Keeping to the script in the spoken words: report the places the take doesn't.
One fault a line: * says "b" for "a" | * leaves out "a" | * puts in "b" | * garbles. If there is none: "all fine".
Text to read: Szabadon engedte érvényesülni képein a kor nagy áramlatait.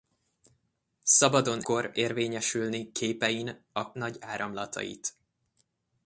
* says "kor" for "engedte"
* leaves out "kor"